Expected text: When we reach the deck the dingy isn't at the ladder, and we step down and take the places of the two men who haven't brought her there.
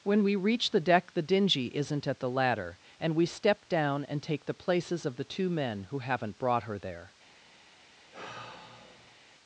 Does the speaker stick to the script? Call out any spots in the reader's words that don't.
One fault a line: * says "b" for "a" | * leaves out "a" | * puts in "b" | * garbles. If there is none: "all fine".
all fine